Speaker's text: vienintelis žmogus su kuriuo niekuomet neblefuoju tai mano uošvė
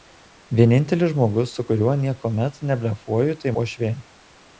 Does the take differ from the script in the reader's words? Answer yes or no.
yes